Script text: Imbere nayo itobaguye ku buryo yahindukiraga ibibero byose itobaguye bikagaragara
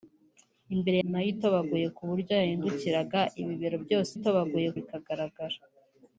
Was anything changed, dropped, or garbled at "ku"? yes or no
no